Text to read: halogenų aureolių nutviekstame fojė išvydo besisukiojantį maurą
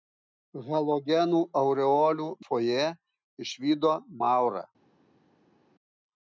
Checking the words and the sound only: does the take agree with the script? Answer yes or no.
no